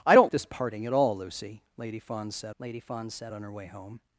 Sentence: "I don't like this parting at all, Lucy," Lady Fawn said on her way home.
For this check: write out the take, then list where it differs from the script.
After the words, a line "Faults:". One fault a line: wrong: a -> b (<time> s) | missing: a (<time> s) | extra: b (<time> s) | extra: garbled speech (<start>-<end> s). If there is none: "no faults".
"I don't this parting at all, Lucy," Lady Fawn said Lady Fawn said on her way home.
Faults:
missing: like (0.3 s)
extra: Lady Fawn said (2.6 s)